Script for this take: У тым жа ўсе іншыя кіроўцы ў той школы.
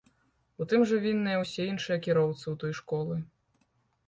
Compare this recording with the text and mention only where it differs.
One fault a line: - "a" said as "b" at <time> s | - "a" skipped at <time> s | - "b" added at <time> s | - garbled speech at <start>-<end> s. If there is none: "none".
- "вінныя" added at 1.0 s